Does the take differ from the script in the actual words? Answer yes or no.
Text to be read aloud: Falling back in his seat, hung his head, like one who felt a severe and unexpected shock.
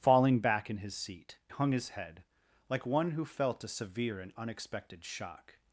no